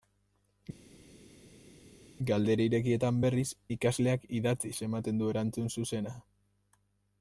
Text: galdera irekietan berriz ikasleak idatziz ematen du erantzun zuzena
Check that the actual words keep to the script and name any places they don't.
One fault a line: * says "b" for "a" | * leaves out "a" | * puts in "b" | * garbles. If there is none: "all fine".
all fine